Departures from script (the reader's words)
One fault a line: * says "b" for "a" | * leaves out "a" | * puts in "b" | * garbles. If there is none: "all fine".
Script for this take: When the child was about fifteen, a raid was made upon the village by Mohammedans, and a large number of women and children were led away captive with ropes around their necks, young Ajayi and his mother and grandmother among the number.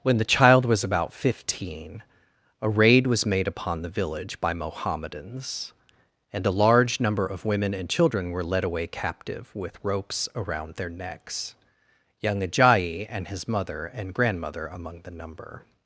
all fine